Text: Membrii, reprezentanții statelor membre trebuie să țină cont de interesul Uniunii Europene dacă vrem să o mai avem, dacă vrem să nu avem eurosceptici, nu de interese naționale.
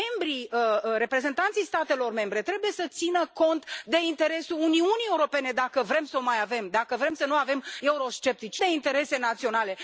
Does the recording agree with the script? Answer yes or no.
no